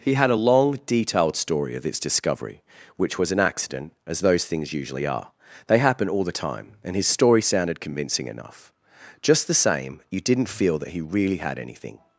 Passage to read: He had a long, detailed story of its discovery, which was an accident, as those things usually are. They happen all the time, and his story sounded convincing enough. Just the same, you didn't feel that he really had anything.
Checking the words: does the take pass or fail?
pass